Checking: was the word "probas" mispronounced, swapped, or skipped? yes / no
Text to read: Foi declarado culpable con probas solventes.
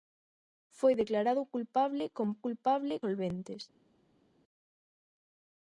yes